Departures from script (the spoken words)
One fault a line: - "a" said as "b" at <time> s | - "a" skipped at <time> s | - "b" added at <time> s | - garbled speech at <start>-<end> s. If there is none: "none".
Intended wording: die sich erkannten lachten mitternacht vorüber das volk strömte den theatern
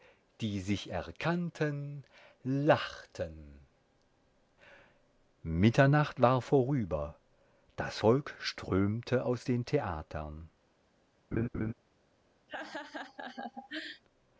- "war" added at 6.2 s
- "aus" added at 9.2 s